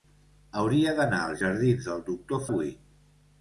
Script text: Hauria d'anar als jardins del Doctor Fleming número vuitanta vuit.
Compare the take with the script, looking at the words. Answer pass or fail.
fail